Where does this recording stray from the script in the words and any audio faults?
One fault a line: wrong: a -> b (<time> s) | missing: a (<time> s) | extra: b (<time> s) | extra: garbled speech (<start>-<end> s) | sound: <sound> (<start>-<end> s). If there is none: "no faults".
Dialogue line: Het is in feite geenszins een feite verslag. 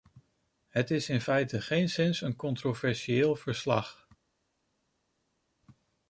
wrong: feite -> controversieel (2.4 s)